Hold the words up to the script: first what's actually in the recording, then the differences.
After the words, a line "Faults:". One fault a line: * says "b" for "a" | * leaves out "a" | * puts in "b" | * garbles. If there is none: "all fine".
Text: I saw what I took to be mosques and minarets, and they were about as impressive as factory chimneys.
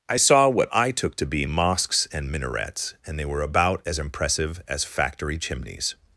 I saw what I took to be mosques and minarets, and they were about as impressive as factory chimneys.
Faults:
all fine